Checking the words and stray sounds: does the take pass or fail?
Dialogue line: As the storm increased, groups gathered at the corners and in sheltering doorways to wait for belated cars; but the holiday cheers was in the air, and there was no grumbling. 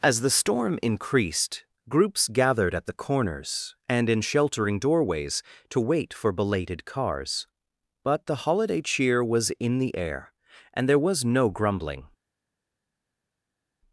fail